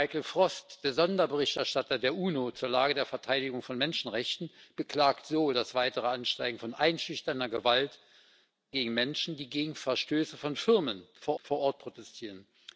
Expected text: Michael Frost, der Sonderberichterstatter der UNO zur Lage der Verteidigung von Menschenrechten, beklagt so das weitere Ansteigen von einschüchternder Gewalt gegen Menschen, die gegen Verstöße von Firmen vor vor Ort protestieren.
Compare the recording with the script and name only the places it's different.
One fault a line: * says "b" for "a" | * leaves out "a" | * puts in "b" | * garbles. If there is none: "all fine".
all fine